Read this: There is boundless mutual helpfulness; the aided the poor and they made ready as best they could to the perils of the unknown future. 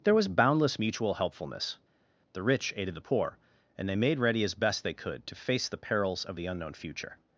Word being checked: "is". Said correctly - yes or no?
no